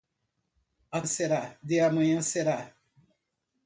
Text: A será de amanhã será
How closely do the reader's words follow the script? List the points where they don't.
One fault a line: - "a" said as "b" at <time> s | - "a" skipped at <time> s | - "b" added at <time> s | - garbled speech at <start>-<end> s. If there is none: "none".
none